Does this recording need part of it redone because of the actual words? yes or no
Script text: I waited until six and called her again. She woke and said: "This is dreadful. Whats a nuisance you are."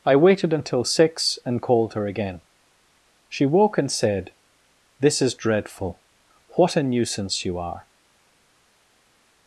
yes